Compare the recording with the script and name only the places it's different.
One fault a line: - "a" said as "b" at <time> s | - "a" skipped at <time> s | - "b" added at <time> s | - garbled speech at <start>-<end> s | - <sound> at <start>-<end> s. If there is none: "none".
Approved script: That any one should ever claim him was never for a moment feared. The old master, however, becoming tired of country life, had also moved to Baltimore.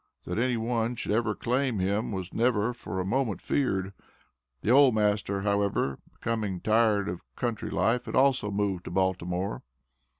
none